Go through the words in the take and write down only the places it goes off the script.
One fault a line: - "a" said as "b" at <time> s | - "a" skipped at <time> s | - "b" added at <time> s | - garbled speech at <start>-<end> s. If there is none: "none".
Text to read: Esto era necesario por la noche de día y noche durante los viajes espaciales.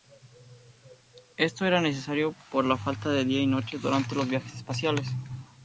- "noche" said as "falta" at 2.8 s